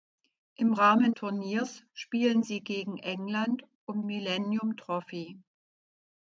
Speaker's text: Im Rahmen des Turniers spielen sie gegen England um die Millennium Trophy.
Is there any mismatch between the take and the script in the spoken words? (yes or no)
yes